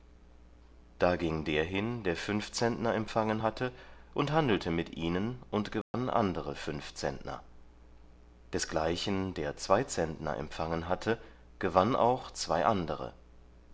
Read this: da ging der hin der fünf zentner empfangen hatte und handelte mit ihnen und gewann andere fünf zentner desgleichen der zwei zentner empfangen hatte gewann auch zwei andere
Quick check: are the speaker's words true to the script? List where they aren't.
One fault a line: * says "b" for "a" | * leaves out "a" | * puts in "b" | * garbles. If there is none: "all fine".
all fine